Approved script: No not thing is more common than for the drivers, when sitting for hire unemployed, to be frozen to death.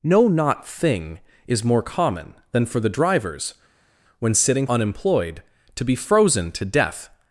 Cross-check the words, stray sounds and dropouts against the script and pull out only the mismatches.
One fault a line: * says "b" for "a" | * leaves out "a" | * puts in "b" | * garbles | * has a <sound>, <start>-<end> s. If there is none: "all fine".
* leaves out "for hire"